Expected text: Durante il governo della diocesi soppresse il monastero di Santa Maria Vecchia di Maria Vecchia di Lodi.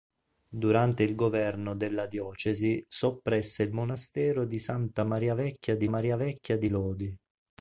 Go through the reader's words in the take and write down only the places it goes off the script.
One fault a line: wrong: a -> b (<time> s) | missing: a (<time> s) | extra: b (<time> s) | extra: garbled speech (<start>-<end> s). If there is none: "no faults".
no faults